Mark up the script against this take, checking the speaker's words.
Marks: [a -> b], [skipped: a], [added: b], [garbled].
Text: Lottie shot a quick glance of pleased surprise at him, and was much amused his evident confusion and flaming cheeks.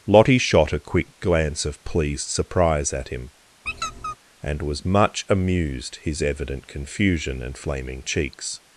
Lottie shot a quick glance of pleased surprise at him, and was much amused his evident confusion and flaming cheeks.